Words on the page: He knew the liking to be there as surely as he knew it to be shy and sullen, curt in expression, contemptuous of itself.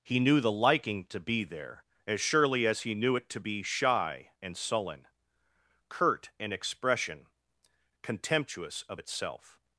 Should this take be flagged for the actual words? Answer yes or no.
no